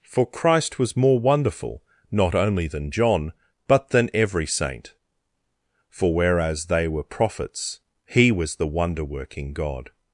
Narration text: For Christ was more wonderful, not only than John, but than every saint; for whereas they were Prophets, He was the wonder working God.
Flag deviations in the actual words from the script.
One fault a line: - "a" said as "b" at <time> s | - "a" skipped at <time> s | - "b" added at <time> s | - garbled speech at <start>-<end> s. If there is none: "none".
none